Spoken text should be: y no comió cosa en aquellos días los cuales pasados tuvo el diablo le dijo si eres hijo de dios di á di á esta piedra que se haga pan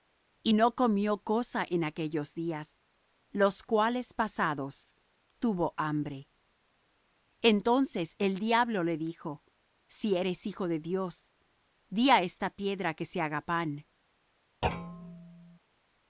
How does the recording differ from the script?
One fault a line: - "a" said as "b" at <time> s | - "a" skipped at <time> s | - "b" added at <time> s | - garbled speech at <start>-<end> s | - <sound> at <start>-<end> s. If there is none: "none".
- "hambre entonces" added at 5.8 s
- "di á" skipped at 12.2 s
- thud at 14.6-15.6 s